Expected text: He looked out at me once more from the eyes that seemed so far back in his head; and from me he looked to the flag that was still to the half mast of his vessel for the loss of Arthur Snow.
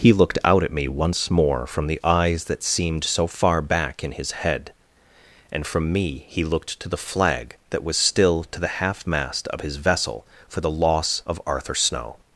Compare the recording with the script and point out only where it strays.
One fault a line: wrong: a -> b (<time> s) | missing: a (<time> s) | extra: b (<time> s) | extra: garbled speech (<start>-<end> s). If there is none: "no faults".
no faults